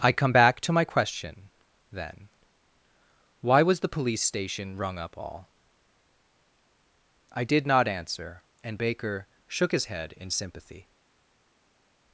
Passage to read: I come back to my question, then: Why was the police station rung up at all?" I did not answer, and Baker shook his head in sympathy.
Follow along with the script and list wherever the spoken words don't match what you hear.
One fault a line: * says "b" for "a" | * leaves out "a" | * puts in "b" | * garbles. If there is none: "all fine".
* leaves out "at"